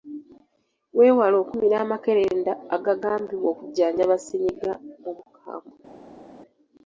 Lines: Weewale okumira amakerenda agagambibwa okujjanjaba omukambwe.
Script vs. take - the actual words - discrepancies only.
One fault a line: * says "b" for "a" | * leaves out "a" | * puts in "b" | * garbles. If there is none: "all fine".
* puts in "ssennyiga"